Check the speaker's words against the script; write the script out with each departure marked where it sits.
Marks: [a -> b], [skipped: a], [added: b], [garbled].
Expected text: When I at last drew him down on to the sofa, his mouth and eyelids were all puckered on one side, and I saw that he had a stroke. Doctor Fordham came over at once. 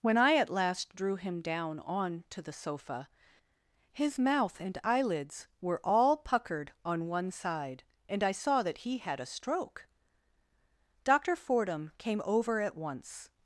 When I at last drew him down on to the sofa, his mouth and eyelids were all puckered on one side, and I saw that he had a stroke. Doctor Fordham came over at once.